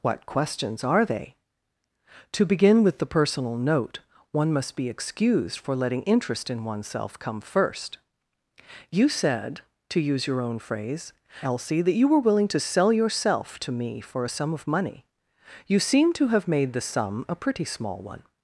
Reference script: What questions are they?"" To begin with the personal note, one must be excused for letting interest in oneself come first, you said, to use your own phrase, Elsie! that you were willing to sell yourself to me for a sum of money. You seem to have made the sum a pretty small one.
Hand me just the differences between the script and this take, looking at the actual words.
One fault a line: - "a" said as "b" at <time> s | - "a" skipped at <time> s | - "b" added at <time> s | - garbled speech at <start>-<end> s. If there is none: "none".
none